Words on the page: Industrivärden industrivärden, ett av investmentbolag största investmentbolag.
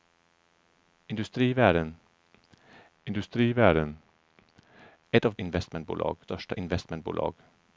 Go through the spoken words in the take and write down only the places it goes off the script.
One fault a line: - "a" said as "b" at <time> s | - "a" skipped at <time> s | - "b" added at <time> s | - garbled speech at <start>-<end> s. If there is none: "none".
none